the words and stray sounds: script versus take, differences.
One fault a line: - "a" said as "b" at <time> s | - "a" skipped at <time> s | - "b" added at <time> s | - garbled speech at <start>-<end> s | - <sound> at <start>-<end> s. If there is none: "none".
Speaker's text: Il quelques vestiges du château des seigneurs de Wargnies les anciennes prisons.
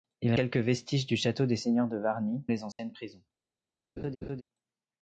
- dropout at 2.7-2.8 s
- laugh at 4.0-4.4 s